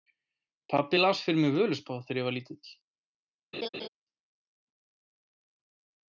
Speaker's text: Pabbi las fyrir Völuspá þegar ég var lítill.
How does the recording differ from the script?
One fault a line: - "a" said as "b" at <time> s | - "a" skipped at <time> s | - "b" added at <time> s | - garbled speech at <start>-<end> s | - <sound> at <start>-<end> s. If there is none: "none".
- "mig" added at 1.4 s
- laugh at 3.5-3.9 s